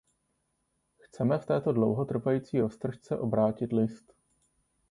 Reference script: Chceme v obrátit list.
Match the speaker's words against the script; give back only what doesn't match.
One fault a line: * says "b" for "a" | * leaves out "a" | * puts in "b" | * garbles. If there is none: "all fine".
* puts in "této dlouhotrvající roztržce"